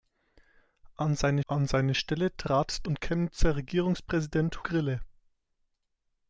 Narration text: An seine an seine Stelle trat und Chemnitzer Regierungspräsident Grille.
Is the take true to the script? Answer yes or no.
yes